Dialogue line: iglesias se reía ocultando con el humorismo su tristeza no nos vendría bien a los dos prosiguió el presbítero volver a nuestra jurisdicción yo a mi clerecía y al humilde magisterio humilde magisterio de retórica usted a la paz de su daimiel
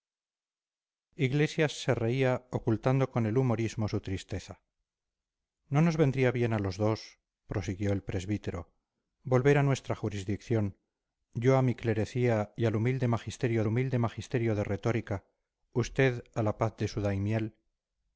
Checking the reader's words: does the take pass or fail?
pass